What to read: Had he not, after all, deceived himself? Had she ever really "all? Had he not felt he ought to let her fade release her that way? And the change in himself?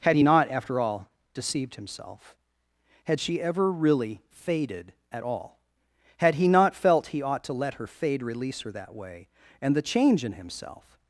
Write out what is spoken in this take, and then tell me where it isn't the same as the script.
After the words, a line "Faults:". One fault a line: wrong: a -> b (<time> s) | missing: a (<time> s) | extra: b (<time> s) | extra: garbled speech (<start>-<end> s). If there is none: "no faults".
Had he not, after all, deceived himself? Had she ever really "faded" at all? Had he not felt he ought to let her fade release her that way? And the change in himself?
Faults:
extra: faded at (4.3 s)